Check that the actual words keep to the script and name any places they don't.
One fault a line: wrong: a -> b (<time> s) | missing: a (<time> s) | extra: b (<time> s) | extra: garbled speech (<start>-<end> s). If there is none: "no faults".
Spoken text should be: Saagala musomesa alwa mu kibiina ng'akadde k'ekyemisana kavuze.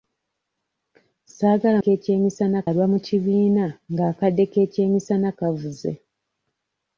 wrong: musomesa -> k'ekyemisana (1.8 s)